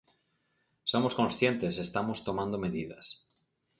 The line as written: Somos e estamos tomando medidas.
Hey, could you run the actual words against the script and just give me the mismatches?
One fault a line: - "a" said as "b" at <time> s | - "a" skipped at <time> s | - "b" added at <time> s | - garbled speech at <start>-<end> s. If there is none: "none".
- "conscientes" added at 1.2 s